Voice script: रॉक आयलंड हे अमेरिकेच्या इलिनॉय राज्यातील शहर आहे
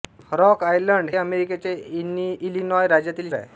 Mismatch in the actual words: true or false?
true